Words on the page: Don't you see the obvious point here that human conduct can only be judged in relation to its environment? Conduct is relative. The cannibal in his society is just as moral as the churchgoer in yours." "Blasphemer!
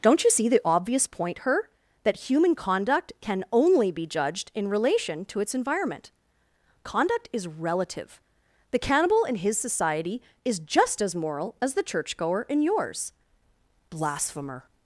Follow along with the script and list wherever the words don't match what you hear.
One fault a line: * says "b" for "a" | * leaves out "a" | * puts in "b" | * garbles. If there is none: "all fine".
* says "her" for "here"